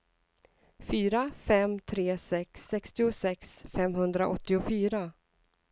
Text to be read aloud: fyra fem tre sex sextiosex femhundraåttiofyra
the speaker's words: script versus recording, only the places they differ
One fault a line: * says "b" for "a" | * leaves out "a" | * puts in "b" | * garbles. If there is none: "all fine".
all fine